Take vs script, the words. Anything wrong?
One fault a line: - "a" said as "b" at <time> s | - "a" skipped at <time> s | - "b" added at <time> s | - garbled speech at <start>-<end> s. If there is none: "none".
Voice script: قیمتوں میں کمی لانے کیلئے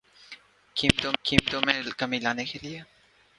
- "قیمتوں" added at 1.2 s